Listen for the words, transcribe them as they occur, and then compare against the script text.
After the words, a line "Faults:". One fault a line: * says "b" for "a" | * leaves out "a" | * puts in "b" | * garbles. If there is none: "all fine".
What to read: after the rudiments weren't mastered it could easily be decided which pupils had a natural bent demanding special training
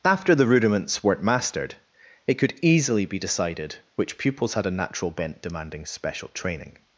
after the rudiments weren't mastered it could easily be decided which pupils had a natural bent demanding special training
Faults:
all fine